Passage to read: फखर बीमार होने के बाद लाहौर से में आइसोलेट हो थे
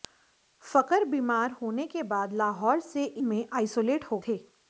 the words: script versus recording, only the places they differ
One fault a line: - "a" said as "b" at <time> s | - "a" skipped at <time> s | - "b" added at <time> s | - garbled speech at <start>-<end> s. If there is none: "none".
none